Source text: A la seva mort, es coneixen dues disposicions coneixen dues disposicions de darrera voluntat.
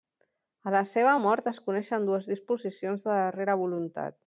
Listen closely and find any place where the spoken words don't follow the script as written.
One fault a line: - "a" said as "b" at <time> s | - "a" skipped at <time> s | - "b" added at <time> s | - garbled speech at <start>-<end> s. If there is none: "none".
- "coneixen dues disposicions" skipped at 3.1 s